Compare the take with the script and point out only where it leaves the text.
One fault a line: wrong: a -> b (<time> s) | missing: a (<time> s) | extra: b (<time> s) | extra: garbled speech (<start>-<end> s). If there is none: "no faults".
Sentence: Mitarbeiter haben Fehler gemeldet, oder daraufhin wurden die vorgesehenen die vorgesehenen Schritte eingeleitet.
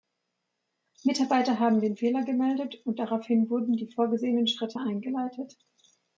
extra: den (1.8 s)
wrong: oder -> und (2.8 s)
missing: die vorgesehenen (4.5 s)